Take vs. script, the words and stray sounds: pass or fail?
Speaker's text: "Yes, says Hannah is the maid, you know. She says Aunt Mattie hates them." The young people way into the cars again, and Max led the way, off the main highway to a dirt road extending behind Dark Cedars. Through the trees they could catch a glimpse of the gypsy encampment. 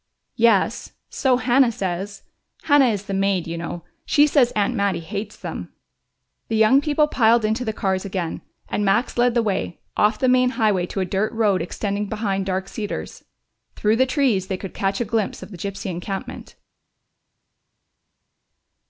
fail